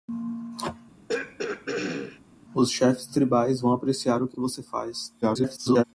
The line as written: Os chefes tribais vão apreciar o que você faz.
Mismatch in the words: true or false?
true